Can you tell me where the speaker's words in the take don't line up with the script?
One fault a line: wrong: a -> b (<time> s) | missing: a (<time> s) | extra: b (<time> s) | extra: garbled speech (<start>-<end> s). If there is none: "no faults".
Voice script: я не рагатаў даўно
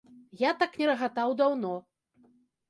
extra: так (0.6 s)